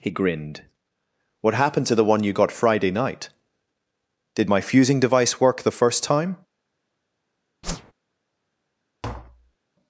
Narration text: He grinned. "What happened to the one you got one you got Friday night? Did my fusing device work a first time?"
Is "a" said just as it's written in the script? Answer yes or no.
no